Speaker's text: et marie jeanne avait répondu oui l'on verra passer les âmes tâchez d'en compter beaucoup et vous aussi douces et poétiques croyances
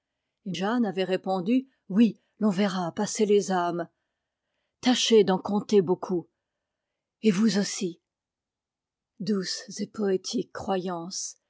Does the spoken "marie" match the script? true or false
false